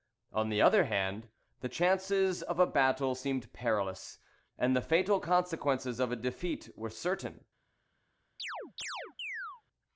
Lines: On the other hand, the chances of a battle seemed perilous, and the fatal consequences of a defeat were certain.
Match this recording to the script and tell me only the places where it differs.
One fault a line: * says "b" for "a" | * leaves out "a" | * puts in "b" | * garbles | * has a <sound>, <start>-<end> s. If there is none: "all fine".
* has a chirp, 8.4-9.6 s